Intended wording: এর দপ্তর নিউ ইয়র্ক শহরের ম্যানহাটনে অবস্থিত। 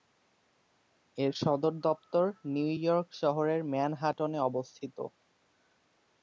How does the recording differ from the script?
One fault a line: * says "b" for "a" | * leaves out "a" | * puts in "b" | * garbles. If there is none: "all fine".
* puts in "সদর"